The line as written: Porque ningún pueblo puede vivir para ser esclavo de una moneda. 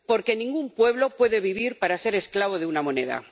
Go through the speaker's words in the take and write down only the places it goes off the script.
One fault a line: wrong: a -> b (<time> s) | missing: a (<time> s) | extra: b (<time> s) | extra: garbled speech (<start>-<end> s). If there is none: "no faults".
no faults